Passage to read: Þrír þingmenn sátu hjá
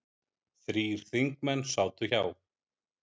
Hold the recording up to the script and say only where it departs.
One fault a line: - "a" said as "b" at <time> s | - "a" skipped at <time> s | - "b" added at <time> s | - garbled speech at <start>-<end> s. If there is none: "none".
none